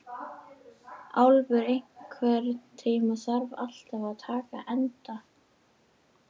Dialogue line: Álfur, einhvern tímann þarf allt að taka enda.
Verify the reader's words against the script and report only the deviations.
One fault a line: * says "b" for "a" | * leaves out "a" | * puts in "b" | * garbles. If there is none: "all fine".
all fine